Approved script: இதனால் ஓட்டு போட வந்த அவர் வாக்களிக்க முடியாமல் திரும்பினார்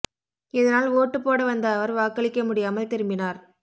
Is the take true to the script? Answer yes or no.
yes